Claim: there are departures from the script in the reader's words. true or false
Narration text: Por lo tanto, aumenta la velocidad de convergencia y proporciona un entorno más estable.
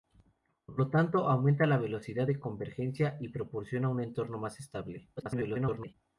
true